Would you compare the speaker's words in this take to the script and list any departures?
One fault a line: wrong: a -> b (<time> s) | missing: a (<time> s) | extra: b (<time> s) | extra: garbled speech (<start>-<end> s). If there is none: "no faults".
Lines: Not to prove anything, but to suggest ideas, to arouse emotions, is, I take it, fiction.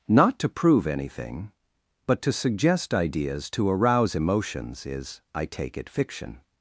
no faults